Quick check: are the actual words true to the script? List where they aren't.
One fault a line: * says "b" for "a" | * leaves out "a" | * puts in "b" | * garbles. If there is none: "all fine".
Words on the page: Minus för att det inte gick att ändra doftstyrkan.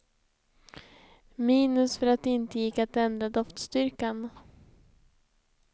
all fine